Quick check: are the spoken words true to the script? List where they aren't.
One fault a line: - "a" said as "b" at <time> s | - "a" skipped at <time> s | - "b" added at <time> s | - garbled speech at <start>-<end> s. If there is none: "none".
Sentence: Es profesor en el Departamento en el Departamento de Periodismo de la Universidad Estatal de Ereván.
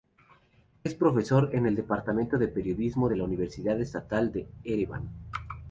- "en el Departamento" skipped at 2.4 s